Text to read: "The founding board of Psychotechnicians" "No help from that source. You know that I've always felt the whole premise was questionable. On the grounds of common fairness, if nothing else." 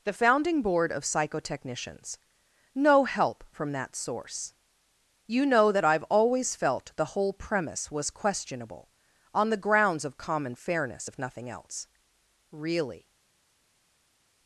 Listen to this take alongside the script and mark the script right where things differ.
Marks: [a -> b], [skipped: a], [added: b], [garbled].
"The founding board of Psychotechnicians" "No help from that source. You know that I've always felt the whole premise was questionable. On the grounds of common fairness, if nothing else." [added: Really]